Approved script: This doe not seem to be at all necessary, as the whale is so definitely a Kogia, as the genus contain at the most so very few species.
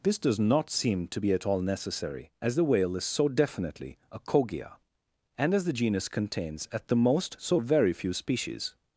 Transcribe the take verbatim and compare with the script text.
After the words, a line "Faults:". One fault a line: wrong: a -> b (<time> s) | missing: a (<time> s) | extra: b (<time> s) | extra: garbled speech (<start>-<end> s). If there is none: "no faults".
This does not seem to be at all necessary, as the whale is so definitely a Kogia, and as the genus contains at the most so very few species.
Faults:
wrong: doe -> does (0.2 s)
extra: and (5.4 s)
wrong: contain -> contains (6.1 s)